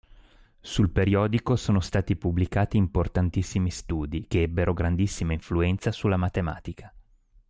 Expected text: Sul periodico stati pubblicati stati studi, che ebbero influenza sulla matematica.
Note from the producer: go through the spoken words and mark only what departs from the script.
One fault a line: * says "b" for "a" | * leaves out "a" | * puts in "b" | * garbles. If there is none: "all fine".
* puts in "sono"
* says "importantissimi" for "stati"
* puts in "grandissima"